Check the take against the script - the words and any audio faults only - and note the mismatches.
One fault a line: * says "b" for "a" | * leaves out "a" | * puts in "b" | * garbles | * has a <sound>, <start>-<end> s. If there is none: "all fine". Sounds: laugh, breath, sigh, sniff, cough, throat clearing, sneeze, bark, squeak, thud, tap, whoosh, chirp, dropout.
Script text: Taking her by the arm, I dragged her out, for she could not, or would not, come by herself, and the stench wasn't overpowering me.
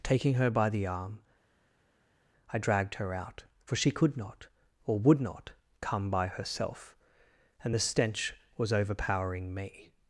* says "was" for "wasn't"